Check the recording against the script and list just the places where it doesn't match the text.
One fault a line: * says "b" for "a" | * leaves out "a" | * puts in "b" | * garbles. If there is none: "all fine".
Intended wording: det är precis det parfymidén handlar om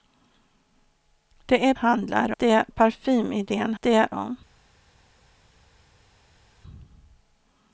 * says "handlar" for "precis"
* says "det" for "handlar"